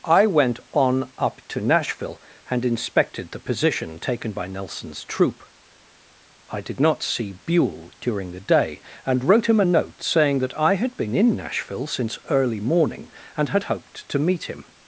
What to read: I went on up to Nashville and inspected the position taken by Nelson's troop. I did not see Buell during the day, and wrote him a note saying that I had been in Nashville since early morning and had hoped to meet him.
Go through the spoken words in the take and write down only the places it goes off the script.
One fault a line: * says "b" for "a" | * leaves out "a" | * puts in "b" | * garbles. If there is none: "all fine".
all fine